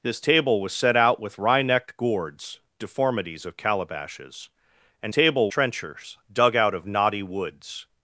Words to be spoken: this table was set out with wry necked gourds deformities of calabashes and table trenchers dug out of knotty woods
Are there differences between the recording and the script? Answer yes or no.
no